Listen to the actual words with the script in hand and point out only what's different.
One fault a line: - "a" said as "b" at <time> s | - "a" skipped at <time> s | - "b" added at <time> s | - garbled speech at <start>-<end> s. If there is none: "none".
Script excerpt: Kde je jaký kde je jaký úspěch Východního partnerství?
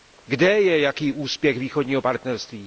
- "kde je jaký" skipped at 1.1 s